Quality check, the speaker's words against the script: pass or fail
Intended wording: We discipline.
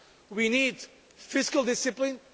fail